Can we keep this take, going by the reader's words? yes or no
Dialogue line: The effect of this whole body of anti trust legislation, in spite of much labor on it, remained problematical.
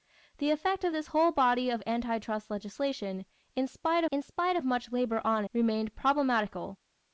no